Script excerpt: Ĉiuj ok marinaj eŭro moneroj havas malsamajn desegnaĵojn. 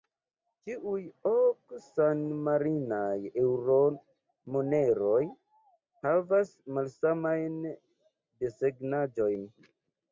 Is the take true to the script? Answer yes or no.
no